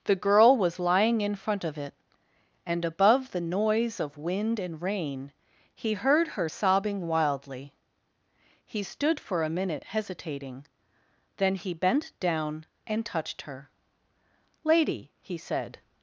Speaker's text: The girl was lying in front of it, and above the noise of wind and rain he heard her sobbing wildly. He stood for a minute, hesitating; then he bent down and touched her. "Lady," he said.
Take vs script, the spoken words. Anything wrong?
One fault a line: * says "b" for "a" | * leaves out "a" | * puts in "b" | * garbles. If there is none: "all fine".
all fine